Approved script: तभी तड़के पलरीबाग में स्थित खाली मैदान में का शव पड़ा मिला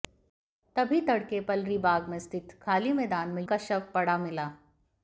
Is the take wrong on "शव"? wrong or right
right